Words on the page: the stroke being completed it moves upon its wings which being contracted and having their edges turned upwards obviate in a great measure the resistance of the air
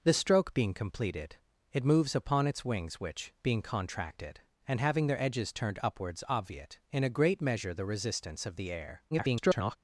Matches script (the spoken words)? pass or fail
fail